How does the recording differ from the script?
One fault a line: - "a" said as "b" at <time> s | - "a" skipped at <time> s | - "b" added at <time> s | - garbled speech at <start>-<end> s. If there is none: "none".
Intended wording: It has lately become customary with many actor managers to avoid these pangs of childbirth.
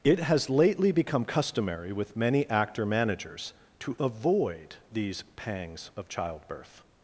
none